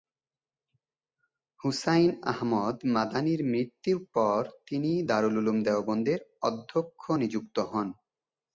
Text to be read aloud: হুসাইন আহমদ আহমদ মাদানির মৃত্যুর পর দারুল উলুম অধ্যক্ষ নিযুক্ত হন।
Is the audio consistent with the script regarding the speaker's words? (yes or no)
no